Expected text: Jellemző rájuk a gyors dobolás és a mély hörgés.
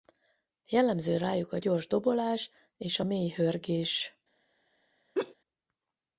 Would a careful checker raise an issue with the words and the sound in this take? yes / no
yes